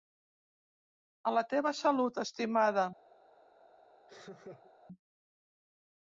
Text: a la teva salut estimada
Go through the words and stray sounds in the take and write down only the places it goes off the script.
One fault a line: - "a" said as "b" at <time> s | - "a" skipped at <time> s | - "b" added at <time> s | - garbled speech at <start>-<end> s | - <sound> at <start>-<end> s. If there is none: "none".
- laugh at 4.1-4.7 s